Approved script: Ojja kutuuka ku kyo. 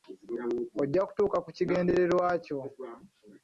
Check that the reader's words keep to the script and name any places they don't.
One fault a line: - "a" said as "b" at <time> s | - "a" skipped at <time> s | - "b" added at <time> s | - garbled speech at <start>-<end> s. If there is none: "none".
- "kigendererwa" added at 1.6 s